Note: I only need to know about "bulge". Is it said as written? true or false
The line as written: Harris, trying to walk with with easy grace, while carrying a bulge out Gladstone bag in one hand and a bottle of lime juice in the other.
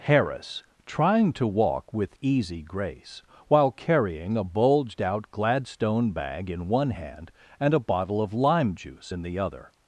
false